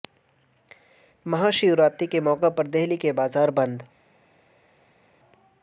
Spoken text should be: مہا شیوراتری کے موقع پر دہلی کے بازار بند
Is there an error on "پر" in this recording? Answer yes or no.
no